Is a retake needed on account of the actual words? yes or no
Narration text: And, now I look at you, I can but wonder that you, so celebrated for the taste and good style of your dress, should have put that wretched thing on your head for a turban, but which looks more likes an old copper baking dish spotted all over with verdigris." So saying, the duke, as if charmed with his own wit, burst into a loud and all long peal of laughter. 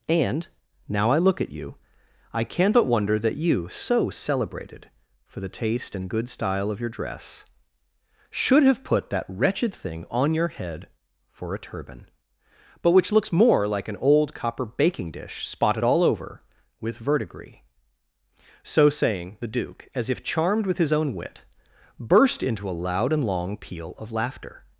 yes